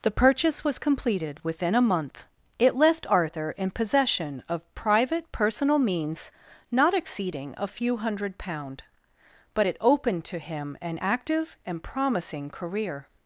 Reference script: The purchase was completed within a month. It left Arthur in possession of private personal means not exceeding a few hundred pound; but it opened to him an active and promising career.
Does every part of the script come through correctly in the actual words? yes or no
yes